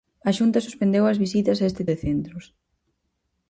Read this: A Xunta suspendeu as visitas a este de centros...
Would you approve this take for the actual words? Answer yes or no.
yes